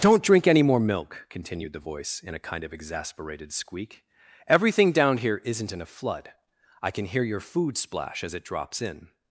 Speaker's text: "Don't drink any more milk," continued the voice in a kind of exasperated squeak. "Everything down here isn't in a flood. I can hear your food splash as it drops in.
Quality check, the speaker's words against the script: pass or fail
pass